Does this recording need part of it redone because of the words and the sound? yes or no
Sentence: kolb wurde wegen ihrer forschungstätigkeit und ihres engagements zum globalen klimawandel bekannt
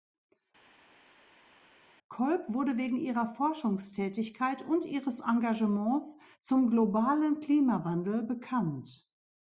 no